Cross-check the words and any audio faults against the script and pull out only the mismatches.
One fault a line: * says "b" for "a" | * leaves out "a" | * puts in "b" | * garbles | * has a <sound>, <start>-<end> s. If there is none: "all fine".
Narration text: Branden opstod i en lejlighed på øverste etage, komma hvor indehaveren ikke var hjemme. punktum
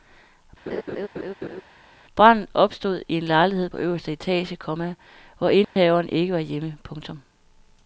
* has a laugh, 0.7-1.6 s
* has a dropout, 5.6-5.8 s